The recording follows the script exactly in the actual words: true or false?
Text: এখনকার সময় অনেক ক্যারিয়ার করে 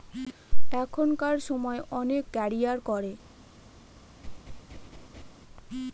true